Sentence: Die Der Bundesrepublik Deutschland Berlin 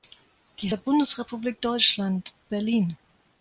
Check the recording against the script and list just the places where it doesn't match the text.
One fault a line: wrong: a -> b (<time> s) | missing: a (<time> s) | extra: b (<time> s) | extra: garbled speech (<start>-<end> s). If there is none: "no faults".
no faults